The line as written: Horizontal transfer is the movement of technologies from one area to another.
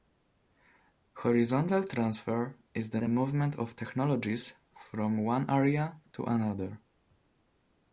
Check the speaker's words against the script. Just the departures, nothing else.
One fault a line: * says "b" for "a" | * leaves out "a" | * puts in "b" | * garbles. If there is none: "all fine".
* puts in "the"